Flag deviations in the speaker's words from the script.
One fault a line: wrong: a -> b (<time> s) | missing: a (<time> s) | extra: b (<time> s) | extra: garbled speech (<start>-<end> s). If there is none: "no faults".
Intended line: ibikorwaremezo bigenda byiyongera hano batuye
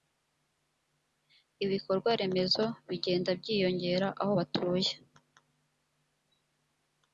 wrong: hano -> aho (4.2 s)